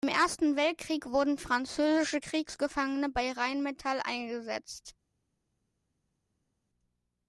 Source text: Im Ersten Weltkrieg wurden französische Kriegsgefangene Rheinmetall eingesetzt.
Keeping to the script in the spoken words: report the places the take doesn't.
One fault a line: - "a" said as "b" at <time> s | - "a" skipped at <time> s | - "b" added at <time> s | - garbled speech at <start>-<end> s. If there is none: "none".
- "bei" added at 3.1 s